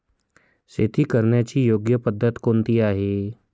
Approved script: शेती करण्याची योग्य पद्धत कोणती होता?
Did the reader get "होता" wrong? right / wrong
wrong